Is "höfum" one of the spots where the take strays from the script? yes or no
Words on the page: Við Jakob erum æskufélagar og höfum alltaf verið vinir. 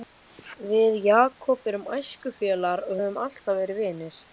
no